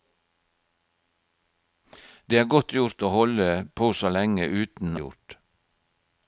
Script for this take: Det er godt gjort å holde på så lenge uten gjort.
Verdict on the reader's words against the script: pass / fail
pass